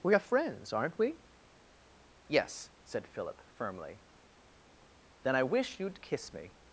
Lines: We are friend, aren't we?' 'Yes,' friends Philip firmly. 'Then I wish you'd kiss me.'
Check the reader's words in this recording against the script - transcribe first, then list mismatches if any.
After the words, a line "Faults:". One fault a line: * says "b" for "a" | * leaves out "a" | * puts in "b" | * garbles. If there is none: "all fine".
We are friends, aren't we?' 'Yes,' said Philip firmly. 'Then I wish you'd kiss me.'
Faults:
* says "friends" for "friend"
* says "said" for "friends"